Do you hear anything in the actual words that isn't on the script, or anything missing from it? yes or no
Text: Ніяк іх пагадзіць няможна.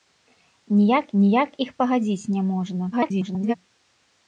yes